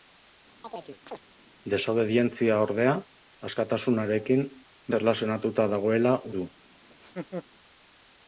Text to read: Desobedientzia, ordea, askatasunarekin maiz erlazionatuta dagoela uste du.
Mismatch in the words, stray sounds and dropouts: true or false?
true